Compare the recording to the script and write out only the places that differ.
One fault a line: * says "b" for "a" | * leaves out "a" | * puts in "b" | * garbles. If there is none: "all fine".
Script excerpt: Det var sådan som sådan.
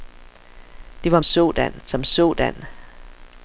all fine